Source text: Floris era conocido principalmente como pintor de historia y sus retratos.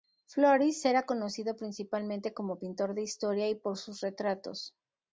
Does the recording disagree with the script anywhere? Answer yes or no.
yes